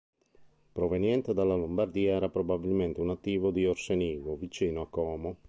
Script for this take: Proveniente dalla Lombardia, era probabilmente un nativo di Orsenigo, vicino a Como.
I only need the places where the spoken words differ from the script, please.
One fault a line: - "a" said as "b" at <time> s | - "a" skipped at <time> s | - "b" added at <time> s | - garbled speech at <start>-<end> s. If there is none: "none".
none